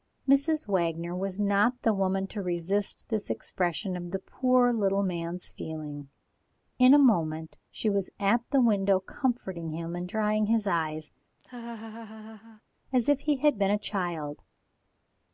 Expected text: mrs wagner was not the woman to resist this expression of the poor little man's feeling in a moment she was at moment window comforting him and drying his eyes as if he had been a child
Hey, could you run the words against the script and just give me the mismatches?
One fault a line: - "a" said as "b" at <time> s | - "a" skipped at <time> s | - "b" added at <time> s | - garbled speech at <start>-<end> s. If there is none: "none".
- "moment" said as "the" at 8.5 s